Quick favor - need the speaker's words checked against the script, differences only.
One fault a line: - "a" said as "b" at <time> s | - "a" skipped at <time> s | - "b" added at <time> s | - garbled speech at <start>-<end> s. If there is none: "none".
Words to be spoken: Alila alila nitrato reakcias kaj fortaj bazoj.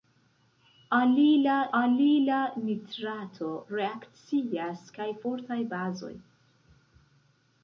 none